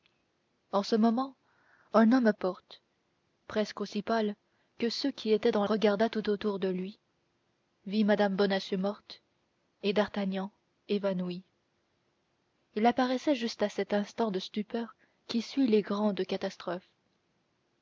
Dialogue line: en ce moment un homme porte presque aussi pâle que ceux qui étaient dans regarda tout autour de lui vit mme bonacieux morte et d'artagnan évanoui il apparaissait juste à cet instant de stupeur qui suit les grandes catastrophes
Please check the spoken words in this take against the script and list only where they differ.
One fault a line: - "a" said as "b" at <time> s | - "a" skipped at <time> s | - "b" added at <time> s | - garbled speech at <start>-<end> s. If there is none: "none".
none